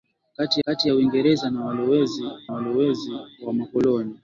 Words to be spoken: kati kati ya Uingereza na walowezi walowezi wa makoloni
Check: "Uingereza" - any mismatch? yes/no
no